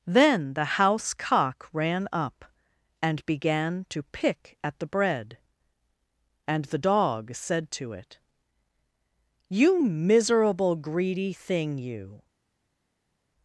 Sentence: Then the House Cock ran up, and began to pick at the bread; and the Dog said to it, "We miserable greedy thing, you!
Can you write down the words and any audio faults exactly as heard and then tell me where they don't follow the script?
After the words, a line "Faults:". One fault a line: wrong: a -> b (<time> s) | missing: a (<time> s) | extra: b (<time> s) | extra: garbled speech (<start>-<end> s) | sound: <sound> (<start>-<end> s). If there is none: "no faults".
Then the House Cock ran up, and began to pick at the bread; and the Dog said to it, "You miserable greedy thing, you!
Faults:
wrong: We -> You (9.5 s)